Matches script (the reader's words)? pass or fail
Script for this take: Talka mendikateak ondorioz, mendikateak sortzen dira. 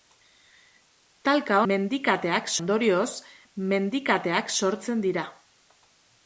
pass